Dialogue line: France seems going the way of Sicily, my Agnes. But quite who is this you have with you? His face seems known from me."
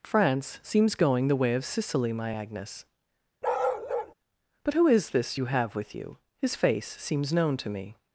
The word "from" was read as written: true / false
false